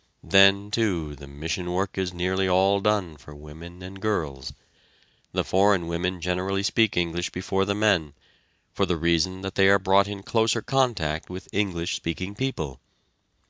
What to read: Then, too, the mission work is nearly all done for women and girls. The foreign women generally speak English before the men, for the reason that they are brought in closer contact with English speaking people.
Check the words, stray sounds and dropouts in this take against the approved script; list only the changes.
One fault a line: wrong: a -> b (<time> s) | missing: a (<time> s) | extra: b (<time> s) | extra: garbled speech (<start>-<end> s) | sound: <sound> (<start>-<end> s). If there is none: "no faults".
no faults